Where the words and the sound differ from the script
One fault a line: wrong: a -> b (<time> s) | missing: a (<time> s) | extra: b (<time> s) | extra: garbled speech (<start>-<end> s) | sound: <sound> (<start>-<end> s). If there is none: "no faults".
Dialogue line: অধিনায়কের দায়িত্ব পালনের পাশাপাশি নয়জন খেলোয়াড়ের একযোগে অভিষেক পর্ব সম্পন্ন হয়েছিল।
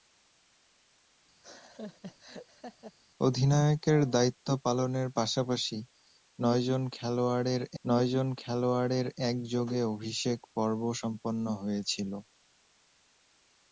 sound: laugh (1.4-3.0 s)
extra: নয়জন খেলোয়াড়ের (7.8 s)